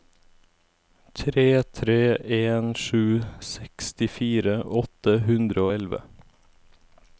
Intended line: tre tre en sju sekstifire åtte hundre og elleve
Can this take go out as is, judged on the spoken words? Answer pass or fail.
pass